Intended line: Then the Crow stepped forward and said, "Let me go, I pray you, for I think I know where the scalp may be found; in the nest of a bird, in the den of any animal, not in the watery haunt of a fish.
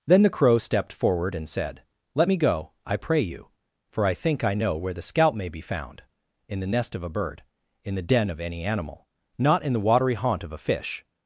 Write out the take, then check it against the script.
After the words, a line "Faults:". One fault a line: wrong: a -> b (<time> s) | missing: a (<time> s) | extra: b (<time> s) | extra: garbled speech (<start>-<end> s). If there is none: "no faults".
Then the Crow stepped forward and said, "Let me go, I pray you, for I think I know where the scalp may be found; in the nest of a bird, in the den of any animal, not in the watery haunt of a fish.
Faults:
no faults